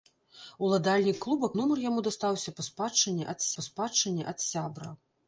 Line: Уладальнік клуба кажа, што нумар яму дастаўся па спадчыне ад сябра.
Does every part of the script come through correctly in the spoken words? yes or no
no